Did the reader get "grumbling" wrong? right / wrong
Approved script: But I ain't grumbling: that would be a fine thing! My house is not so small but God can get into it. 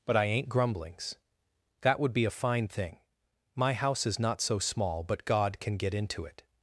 wrong